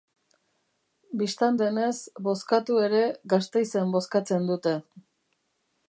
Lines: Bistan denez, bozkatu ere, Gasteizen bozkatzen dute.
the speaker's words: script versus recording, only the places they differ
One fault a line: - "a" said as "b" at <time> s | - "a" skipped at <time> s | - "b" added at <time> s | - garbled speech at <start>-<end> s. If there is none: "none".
none